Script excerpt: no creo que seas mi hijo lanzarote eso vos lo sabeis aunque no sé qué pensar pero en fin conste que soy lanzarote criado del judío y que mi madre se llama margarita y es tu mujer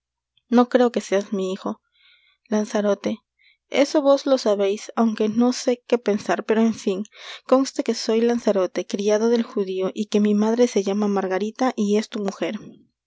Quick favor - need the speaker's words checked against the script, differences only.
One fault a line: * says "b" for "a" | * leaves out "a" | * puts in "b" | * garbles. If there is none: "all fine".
all fine